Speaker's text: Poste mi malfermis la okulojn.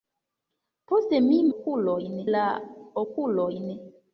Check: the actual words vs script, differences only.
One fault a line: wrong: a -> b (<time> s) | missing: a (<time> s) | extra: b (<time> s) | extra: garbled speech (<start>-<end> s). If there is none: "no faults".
wrong: malfermis -> okulojn (1.5 s)